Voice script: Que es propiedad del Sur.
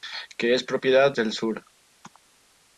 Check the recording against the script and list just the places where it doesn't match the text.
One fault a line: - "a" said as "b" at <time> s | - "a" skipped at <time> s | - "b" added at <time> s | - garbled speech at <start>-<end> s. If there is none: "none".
none